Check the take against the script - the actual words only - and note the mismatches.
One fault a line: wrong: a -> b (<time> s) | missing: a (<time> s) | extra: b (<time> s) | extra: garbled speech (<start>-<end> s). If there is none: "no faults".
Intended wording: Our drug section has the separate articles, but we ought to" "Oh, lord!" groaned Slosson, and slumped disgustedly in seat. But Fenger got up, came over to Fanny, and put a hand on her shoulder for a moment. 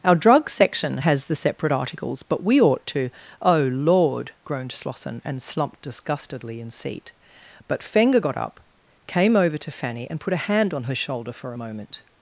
no faults